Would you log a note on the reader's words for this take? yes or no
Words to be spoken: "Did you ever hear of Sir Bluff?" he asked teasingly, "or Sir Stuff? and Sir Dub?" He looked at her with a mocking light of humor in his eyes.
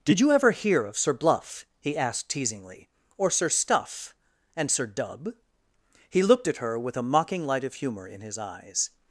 no